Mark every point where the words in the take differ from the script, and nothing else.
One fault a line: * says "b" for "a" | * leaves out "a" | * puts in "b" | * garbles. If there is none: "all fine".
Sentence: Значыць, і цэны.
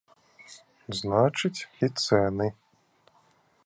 all fine